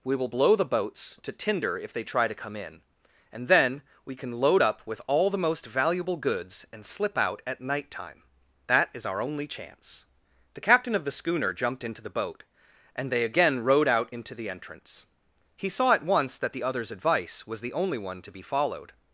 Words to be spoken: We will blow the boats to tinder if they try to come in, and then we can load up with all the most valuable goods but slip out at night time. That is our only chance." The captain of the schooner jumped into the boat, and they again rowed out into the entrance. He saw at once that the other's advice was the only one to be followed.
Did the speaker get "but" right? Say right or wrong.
wrong